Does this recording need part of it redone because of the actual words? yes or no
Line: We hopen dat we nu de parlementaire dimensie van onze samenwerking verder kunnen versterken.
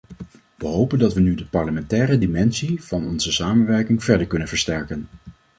no